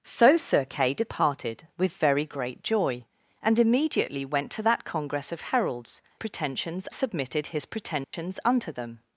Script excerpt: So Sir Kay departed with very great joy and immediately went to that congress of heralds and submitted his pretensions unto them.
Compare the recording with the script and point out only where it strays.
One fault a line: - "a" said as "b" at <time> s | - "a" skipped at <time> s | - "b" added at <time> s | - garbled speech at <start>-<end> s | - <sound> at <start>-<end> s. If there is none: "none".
- "and" said as "pretensions" at 6.1 s
- dropout at 8.0-8.1 s